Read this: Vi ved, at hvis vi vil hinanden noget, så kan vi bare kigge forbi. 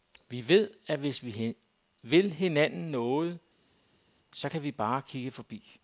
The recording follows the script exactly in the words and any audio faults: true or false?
true